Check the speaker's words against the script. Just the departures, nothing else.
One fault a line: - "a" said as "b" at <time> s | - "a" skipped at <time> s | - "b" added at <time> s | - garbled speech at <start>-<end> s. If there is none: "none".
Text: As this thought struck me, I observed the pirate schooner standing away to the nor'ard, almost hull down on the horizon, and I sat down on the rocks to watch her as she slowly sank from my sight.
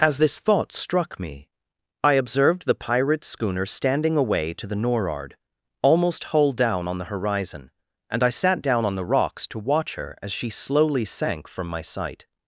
none